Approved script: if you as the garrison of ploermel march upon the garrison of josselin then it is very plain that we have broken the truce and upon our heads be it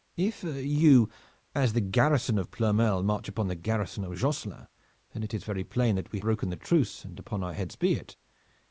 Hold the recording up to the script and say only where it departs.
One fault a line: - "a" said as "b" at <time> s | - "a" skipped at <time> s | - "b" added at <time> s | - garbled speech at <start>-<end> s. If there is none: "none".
- "have" skipped at 6.2 s